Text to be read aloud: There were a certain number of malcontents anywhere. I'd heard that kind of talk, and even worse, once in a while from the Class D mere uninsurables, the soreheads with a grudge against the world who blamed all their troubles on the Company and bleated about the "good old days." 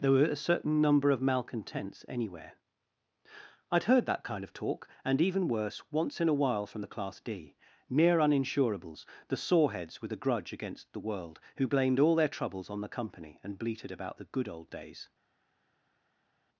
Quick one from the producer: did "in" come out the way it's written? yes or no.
yes